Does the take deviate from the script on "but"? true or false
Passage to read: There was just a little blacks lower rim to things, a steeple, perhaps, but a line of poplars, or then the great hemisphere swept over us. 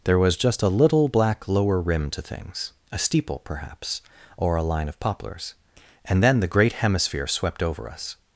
true